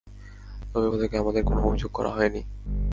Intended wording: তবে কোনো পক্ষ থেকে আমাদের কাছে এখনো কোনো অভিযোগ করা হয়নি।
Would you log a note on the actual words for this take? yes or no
yes